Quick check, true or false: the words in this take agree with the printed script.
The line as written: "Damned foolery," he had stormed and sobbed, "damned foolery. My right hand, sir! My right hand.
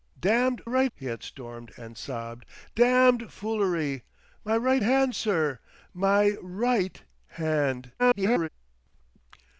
false